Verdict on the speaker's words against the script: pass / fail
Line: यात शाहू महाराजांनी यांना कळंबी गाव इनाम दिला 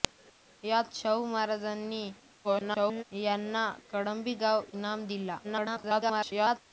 fail